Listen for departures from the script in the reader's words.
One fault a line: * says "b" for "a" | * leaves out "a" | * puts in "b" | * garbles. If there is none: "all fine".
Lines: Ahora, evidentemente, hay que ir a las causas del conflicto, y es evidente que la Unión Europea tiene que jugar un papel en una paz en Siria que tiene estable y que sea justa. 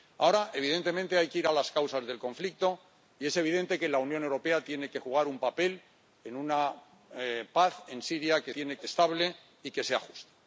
all fine